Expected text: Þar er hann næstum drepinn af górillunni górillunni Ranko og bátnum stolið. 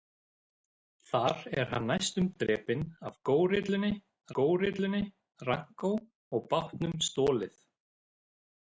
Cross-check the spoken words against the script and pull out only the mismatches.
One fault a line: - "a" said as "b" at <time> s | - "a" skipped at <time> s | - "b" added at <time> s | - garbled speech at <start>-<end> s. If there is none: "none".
none